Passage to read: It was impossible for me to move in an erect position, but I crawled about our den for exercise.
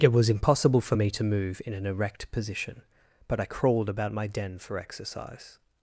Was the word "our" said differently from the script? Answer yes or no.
yes